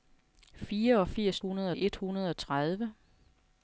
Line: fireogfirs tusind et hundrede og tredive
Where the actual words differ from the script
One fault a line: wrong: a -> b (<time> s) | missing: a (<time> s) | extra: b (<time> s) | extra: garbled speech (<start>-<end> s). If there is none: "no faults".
wrong: tusind -> hundrede (1.4 s)